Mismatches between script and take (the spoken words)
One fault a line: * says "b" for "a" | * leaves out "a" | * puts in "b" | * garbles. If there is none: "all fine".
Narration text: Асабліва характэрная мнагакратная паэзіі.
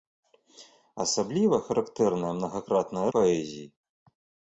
all fine